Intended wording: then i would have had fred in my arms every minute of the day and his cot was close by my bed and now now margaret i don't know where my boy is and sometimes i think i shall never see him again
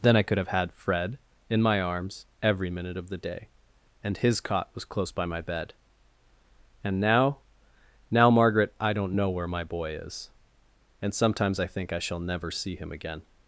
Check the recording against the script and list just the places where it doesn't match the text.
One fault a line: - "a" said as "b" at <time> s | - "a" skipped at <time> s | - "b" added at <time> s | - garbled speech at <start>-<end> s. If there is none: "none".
- "would" said as "could" at 0.2 s